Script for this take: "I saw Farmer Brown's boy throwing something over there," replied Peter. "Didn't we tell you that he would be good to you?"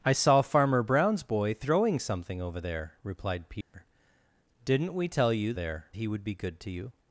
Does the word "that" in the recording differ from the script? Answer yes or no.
yes